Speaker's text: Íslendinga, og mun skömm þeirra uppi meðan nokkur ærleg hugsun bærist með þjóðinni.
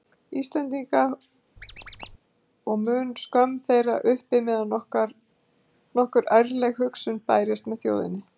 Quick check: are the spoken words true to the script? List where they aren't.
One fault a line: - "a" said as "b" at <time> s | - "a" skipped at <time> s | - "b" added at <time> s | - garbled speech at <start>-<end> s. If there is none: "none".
none